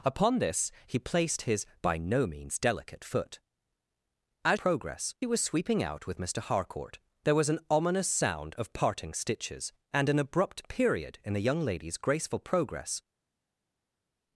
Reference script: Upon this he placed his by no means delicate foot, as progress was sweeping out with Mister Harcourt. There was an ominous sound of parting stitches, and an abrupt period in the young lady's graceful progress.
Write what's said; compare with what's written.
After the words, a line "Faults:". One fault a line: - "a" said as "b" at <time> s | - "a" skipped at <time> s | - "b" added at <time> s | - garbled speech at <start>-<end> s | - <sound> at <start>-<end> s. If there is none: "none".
Upon this he placed his by no means delicate foot, as progress was sweeping out with Mister Harcourt. There was an ominous sound of parting stitches, and an abrupt period in the young lady's graceful progress.
Faults:
none